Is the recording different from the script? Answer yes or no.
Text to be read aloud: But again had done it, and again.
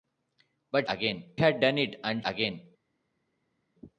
no